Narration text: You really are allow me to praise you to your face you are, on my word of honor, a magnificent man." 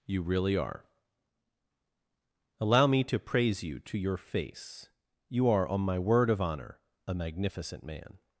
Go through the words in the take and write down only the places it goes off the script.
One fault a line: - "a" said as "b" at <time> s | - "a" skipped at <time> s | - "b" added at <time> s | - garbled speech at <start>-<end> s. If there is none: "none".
none